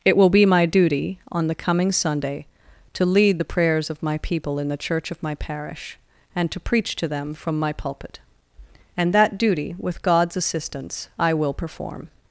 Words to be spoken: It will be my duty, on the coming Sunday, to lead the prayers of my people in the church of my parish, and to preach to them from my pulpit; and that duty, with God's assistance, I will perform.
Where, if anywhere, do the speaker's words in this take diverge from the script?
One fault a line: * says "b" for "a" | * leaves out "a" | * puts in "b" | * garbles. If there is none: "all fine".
all fine